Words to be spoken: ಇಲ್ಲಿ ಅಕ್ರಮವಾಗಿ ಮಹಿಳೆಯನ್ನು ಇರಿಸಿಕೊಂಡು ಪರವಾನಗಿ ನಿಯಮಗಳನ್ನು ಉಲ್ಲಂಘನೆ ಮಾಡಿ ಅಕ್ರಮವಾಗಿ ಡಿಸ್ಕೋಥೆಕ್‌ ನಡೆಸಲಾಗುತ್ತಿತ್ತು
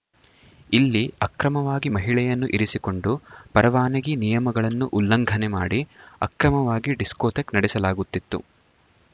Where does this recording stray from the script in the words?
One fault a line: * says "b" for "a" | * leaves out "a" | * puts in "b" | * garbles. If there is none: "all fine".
all fine